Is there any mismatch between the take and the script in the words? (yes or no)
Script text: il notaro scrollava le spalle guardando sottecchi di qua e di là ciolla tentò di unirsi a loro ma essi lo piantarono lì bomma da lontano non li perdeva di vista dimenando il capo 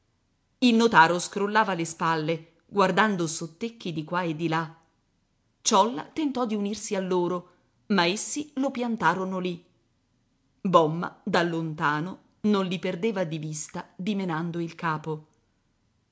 no